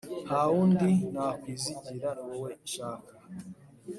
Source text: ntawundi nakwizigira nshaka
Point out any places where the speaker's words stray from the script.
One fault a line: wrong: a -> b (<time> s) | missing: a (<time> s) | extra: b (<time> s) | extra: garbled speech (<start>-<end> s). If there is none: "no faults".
extra: niwowe (2.1 s)